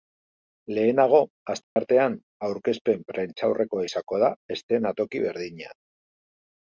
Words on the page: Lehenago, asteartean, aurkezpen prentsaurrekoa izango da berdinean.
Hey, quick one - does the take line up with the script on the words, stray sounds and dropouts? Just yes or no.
no